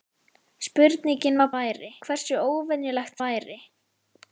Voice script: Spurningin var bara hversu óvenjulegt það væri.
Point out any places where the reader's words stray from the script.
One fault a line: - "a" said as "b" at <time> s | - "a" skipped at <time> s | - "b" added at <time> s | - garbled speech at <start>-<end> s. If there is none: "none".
- "bara" said as "væri" at 1.6 s
- "það" skipped at 3.2 s